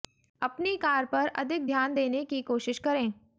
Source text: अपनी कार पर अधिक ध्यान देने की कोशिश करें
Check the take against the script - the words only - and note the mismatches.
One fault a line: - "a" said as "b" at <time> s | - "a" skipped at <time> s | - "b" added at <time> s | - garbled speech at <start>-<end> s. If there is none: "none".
none